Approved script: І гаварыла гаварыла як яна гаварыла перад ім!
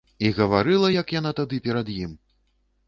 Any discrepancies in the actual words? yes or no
yes